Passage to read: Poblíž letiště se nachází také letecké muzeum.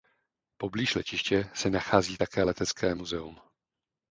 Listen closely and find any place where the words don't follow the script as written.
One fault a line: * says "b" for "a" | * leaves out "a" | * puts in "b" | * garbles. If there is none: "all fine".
all fine